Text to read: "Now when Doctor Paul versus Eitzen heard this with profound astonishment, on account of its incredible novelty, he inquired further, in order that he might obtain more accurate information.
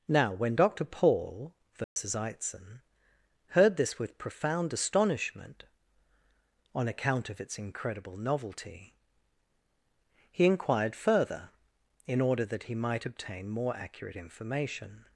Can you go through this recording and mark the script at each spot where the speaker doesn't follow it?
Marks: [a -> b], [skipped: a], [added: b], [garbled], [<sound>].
"Now when Doctor Paul versus [dropout] Eitzen heard this with profound astonishment, on account of its incredible novelty, he inquired further, in order that he might obtain more accurate information.